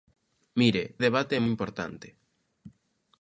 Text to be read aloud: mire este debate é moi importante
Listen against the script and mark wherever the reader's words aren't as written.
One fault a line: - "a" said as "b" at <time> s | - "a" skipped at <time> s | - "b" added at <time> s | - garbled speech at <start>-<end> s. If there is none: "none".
- "este" skipped at 0.8 s
- "moi" skipped at 1.4 s